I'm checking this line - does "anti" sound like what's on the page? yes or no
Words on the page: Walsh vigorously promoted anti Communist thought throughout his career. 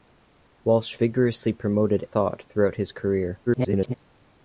no